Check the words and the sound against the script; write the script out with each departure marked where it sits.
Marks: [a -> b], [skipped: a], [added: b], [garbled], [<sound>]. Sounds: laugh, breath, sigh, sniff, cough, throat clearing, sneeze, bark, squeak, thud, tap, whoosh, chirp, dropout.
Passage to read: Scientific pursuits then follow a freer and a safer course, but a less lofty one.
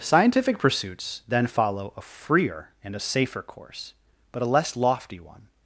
Scientific pursuits then follow a freer and a safer course, but a less lofty one.